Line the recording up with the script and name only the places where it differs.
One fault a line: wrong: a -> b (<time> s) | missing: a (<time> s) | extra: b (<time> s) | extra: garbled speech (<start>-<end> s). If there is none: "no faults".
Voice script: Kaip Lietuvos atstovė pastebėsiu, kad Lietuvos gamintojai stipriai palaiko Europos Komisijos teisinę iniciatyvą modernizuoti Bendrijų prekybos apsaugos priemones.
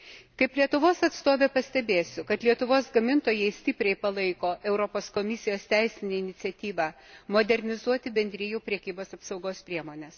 no faults